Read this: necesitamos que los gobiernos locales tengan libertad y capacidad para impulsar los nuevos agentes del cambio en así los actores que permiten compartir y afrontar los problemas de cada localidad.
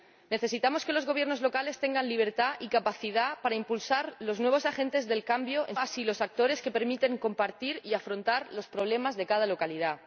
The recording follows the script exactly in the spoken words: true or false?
true